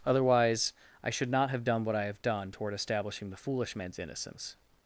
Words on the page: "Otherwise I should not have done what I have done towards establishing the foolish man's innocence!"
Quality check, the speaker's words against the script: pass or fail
fail